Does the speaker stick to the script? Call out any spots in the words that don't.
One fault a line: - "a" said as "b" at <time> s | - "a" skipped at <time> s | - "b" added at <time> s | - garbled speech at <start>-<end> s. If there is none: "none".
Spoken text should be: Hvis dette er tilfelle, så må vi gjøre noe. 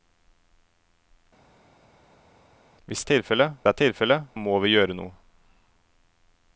- "dette" said as "tilfelle" at 3.1 s
- "så" skipped at 4.2 s